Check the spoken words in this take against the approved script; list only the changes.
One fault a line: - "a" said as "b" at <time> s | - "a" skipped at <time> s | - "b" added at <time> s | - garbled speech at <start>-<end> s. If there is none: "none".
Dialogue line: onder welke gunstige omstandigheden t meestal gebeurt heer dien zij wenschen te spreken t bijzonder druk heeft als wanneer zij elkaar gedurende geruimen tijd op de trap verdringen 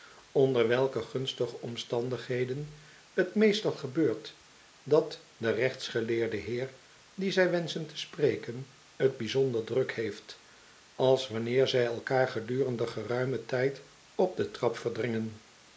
- "dat de rechtsgeleerde" added at 4.8 s